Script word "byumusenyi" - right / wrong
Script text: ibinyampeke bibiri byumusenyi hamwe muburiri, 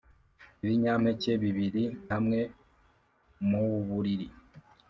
wrong